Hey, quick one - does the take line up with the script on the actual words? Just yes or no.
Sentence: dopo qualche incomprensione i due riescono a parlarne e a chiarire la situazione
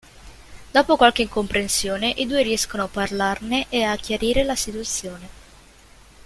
yes